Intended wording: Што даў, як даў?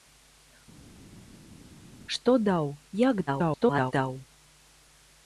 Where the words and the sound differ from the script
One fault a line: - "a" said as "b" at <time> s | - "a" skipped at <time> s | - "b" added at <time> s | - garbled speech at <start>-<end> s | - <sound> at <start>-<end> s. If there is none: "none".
- garbled speech at 3.3-3.9 s